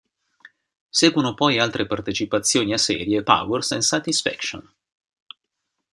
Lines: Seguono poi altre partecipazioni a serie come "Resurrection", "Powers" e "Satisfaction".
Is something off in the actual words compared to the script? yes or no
yes